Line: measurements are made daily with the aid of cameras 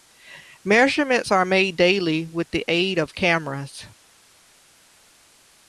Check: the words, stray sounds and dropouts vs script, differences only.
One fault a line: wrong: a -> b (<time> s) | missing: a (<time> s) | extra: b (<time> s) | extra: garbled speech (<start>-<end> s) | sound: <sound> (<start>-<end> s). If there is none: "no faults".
no faults